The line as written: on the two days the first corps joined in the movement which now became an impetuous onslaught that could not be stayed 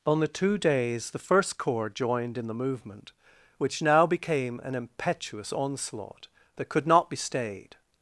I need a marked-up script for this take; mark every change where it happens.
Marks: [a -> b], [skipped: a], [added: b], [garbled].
on the two days the first corps joined in the movement which now became an impetuous onslaught that could not be stayed